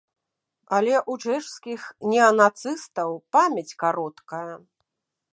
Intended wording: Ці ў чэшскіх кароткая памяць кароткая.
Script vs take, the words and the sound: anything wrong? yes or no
yes